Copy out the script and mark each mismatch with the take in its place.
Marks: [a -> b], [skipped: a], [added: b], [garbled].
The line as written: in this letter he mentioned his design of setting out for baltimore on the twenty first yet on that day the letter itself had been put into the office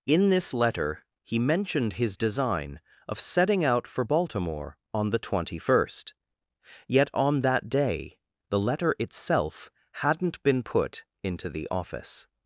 in this letter he mentioned his design of setting out for baltimore on the twenty first yet on that day the letter itself [had -> hadn't] been put into the office